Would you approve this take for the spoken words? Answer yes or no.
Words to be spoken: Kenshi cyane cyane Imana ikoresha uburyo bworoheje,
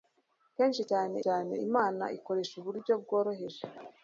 yes